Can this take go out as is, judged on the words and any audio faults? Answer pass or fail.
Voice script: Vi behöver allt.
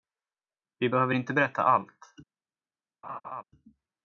fail